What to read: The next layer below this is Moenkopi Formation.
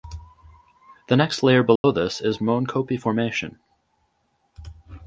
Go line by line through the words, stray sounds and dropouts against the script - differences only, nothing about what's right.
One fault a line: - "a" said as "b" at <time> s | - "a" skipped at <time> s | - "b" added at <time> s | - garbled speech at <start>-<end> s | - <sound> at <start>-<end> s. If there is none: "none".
- dropout at 1.8-1.8 s